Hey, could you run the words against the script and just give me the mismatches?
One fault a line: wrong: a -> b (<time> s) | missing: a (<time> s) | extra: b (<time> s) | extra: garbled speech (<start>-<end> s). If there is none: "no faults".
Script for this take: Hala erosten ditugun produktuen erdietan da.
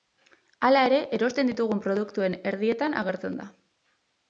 extra: ere (0.9 s)
extra: agertzen (3.1 s)